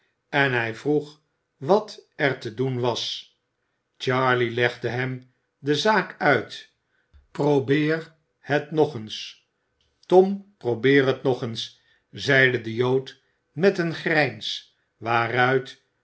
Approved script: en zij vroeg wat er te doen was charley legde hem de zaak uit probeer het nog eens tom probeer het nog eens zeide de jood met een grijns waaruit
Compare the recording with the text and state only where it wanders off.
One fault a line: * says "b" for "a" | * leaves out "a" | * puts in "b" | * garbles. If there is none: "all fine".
* says "hij" for "zij"